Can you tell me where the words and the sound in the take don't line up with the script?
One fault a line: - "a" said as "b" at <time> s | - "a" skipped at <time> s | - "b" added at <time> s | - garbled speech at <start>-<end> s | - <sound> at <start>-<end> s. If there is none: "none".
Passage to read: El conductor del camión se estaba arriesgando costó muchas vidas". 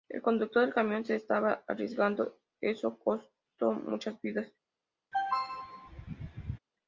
- "eso" added at 2.6 s
- throat clearing at 5.1-6.6 s